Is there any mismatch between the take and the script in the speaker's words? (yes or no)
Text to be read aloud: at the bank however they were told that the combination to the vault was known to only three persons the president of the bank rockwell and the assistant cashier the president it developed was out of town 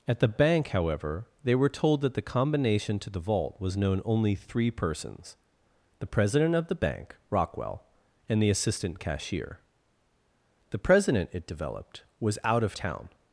yes